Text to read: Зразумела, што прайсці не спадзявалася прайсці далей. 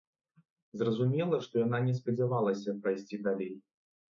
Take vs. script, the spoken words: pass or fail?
fail